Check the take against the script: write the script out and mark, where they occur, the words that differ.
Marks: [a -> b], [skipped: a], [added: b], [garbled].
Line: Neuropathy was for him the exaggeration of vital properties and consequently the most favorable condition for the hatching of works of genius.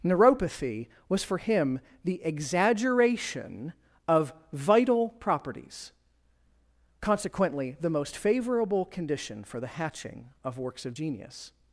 Neuropathy was for him the exaggeration of vital properties [skipped: and] consequently the most favorable condition for the hatching of works of genius.